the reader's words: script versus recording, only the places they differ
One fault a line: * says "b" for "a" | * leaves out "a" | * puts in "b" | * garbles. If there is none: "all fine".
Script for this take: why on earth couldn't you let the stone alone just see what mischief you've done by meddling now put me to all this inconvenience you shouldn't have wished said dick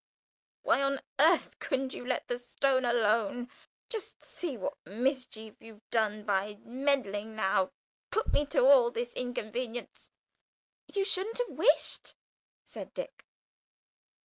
all fine